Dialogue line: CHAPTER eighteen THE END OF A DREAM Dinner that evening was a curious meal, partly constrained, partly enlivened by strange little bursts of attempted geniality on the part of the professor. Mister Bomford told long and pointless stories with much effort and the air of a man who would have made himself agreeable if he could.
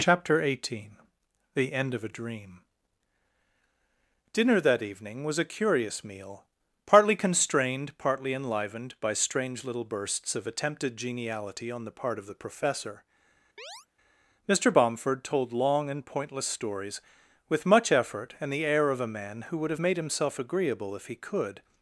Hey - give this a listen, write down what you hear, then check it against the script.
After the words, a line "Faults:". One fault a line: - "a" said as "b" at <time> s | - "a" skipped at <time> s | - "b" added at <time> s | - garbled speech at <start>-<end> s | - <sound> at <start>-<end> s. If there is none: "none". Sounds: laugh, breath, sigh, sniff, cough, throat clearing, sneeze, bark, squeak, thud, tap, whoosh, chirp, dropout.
CHAPTER eighteen THE END OF A DREAM Dinner that evening was a curious meal, partly constrained, partly enlivened by strange little bursts of attempted geniality on the part of the professor. Mister Bomford told long and pointless stories with much effort and the air of a man who would have made himself agreeable if he could.
Faults:
- chirp at 13.6-13.9 s